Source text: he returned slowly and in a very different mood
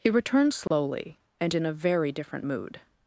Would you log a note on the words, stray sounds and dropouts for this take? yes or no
yes